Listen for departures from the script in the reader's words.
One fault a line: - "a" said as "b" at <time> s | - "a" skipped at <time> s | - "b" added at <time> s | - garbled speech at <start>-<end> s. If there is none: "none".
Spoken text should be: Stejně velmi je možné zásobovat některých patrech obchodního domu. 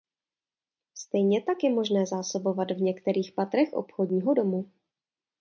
- "velmi" said as "tak" at 1.4 s
- "v" added at 2.7 s